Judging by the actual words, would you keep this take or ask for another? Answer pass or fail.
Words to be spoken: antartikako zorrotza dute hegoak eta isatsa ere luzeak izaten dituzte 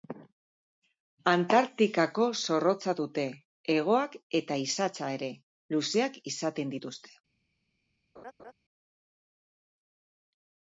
pass